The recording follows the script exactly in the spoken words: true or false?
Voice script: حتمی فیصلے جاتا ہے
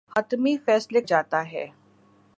true